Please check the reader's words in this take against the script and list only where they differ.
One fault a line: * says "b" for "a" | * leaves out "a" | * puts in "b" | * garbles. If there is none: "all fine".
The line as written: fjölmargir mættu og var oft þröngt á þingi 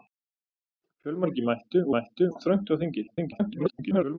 * says "mættu" for "var"
* garbles